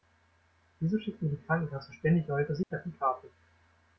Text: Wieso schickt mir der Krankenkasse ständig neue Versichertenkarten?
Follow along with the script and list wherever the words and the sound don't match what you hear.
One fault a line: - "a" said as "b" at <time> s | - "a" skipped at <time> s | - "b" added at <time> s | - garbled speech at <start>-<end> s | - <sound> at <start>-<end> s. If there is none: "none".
- "der" said as "die" at 1.3 s
- dropout at 2.6-2.7 s